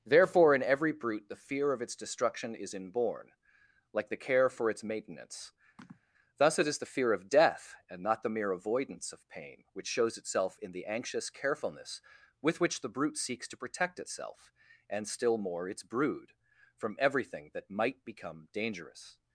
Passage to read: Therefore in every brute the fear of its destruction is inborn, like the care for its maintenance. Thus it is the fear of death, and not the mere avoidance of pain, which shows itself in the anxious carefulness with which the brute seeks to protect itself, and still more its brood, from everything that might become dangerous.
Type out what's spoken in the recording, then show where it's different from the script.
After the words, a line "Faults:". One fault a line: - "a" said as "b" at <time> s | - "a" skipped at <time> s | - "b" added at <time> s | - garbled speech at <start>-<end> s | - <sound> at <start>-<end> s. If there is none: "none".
Therefore in every brute the fear of its destruction is inborn, like the care for its maintenance. Thus it is the fear of death, and not the mere avoidance of pain, which shows itself in the anxious carefulness with which the brute seeks to protect itself, and still more its brood, from everything that might become dangerous.
Faults:
- sigh at 5.8-6.0 s